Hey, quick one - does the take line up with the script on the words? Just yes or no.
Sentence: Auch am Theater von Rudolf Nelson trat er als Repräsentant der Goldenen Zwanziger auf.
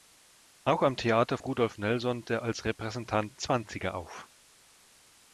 no